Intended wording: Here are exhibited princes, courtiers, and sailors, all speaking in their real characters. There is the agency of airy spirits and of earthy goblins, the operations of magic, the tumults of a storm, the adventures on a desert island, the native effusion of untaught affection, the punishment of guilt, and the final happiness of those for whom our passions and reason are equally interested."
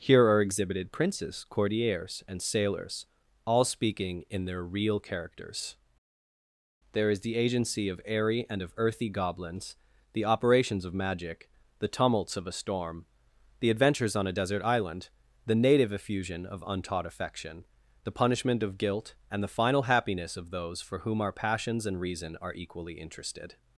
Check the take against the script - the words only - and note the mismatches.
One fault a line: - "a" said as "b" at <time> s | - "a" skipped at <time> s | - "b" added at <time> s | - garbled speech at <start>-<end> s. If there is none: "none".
- "spirits" skipped at 8.5 s